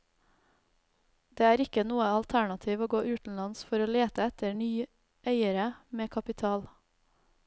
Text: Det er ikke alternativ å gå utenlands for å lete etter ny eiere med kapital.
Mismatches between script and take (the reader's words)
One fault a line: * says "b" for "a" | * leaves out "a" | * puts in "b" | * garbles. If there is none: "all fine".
* puts in "noe"